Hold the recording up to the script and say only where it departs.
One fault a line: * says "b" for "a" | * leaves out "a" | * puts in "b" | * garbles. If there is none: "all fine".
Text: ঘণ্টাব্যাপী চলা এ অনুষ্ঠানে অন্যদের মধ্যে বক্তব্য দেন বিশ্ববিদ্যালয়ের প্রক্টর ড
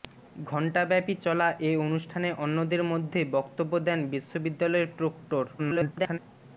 * garbles